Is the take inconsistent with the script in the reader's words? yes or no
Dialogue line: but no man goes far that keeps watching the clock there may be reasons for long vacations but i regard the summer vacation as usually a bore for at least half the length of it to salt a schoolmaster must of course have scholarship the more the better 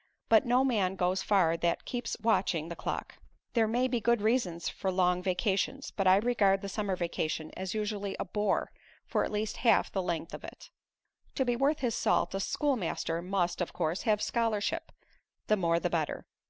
yes